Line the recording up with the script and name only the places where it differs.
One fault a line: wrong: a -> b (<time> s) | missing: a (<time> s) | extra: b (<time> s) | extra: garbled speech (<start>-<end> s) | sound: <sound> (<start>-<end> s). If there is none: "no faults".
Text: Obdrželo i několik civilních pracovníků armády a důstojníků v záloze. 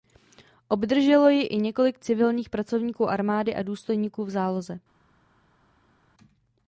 extra: ji (1.3 s)